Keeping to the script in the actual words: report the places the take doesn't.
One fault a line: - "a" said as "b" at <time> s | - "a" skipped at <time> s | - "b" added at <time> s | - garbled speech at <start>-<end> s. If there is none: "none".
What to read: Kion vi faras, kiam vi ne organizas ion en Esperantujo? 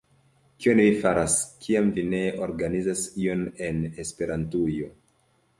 none